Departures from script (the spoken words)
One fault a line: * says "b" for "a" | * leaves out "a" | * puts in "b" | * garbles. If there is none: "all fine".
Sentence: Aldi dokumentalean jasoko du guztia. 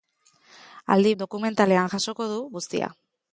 all fine